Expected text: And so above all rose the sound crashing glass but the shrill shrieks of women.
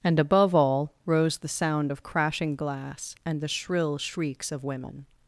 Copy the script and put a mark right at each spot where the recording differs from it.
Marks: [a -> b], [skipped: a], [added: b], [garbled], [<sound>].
And [skipped: so] above all rose the sound [added: of] crashing glass [but -> and] the shrill shrieks of women.